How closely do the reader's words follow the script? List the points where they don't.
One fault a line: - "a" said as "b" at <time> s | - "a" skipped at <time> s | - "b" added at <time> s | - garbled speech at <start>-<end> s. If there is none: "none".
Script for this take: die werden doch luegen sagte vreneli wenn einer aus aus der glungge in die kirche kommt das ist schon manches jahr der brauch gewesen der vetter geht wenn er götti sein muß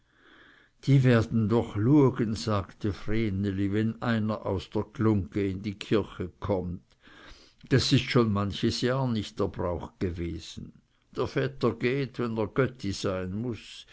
- "aus" skipped at 4.7 s
- "nicht" added at 9.1 s